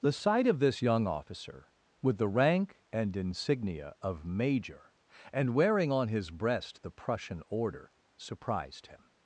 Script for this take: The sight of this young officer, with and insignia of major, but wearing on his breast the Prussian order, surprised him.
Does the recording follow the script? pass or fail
fail